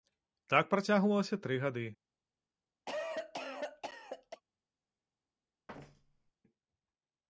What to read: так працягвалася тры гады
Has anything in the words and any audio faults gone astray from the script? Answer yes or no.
yes